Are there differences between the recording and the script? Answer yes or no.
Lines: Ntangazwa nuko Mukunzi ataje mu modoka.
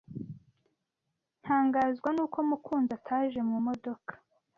no